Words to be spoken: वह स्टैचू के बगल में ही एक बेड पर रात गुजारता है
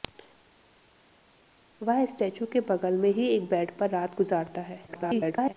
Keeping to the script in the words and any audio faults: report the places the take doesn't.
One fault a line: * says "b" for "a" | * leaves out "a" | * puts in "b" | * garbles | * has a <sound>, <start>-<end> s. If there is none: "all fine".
* garbles